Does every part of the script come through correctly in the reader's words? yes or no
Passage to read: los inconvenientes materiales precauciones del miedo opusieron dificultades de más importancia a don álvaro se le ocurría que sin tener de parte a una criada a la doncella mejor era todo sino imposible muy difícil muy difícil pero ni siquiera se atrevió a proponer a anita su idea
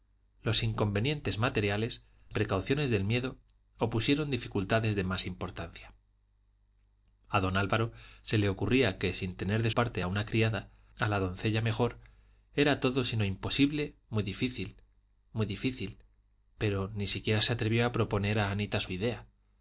yes